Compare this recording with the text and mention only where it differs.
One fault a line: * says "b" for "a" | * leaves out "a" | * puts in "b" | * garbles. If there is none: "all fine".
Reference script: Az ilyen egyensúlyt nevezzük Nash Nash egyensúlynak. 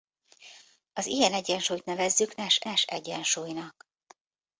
all fine